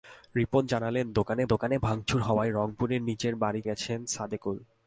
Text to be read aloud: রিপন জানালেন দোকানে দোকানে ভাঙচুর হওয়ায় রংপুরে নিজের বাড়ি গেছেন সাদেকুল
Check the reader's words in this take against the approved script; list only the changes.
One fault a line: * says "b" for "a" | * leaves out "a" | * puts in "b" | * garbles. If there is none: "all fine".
all fine